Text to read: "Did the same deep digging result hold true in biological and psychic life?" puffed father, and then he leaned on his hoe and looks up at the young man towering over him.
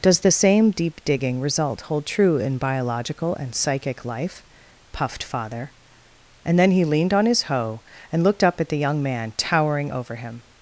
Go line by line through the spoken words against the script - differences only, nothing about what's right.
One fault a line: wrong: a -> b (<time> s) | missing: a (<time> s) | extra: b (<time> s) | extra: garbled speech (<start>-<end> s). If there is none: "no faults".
wrong: Did -> Does (0.0 s)
wrong: looks -> looked (8.2 s)